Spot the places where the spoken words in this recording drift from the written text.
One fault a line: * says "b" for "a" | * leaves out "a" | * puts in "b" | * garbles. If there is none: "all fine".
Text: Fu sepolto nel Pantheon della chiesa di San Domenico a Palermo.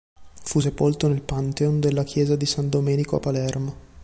all fine